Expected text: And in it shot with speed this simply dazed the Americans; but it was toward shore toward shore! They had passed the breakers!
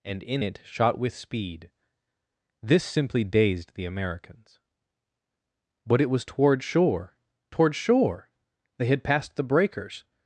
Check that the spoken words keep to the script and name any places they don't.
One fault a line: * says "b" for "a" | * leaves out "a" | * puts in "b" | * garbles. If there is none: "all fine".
all fine